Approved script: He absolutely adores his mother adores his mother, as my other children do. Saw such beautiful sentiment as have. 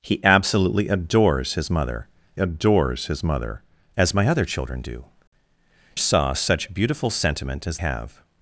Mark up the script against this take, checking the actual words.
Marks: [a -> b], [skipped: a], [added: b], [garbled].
He absolutely adores his mother adores his mother, as my other children do. Saw such beautiful sentiment as have.